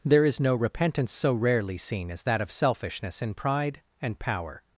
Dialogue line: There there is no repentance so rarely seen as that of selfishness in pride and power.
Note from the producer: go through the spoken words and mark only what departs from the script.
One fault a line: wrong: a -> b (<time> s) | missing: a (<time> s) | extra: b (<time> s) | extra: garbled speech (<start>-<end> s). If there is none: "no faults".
missing: there (0.2 s)